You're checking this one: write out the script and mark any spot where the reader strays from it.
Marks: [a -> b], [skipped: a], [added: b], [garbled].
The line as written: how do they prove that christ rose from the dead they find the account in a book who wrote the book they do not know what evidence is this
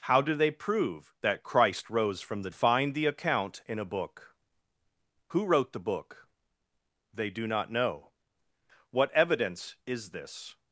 how do they prove that christ rose from the [skipped: dead they] find the account in a book who wrote the book they do not know what evidence is this